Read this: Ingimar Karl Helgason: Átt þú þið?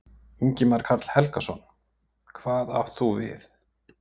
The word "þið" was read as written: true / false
false